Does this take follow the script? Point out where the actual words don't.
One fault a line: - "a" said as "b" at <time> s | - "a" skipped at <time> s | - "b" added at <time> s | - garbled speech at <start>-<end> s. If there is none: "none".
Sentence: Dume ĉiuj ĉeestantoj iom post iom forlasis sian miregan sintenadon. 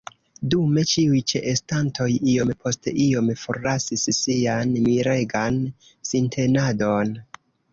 none